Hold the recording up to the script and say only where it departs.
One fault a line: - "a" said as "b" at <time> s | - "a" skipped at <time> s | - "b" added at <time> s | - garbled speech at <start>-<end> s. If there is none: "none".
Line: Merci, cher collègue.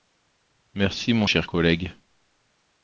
- "mon" added at 1.1 s